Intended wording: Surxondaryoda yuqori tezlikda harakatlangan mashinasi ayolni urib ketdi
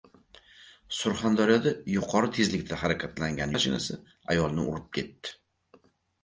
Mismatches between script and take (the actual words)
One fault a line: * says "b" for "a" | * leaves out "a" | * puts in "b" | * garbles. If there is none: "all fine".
all fine